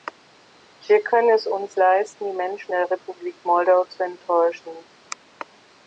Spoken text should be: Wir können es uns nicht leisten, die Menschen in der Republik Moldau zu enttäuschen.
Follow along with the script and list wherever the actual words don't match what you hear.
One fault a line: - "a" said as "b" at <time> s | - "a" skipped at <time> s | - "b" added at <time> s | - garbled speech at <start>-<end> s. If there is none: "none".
- "nicht" skipped at 1.8 s
- "in" skipped at 2.7 s